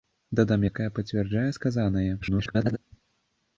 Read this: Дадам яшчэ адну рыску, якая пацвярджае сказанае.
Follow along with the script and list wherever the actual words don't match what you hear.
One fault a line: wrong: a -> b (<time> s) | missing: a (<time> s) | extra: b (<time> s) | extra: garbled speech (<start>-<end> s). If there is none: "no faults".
missing: яшчэ адну рыску (0.6 s)
extra: garbled speech (2.2-2.8 s)